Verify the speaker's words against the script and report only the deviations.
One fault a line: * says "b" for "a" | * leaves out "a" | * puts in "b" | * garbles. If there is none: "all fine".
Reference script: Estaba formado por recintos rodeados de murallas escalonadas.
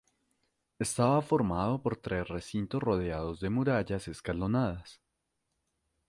* puts in "tres"